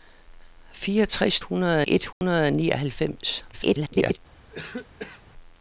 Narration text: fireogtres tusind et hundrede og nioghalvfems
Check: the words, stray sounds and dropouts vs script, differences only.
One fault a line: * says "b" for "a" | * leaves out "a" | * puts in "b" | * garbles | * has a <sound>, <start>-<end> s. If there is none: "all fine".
* says "hundrede" for "tusind"
* has a dropout, 2.1-2.2 s
* garbles
* has a cough, 4.5-5.2 s